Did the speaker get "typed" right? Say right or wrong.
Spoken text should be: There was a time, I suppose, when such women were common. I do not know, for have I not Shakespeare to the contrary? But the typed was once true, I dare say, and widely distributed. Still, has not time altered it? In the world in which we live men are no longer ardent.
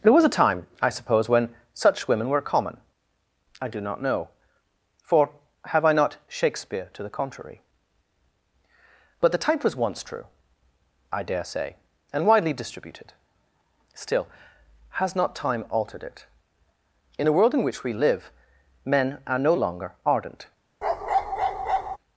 wrong